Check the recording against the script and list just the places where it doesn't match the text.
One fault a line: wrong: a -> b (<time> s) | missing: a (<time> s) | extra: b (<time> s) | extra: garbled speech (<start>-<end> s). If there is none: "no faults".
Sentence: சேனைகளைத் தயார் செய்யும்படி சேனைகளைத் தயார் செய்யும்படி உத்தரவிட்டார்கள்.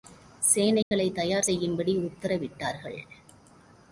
missing: சேனைகளைத் தயார் செய்யும்படி (2.0 s)